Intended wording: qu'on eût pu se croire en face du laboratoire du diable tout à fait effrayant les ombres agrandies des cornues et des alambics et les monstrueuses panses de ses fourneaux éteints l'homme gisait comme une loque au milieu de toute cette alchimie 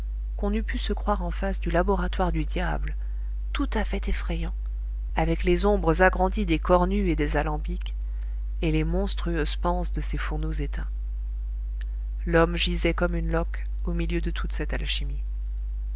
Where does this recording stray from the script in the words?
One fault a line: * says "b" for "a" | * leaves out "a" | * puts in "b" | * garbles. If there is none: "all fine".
* puts in "avec"